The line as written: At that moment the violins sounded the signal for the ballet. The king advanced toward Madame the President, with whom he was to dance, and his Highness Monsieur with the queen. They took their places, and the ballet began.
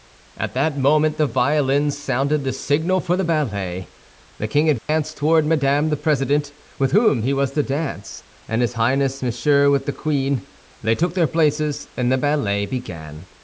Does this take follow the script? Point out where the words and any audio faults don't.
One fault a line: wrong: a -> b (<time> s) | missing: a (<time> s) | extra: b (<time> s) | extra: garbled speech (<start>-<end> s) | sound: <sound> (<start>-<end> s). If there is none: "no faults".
sound: dropout (4.8-4.9 s)